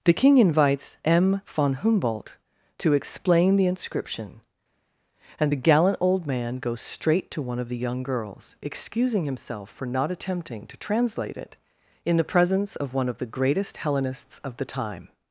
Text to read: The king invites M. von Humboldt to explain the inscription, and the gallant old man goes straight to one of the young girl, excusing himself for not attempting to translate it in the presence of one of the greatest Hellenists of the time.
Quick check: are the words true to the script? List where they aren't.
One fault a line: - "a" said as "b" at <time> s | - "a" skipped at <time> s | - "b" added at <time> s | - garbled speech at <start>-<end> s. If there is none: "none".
- "girl" said as "girls" at 8.0 s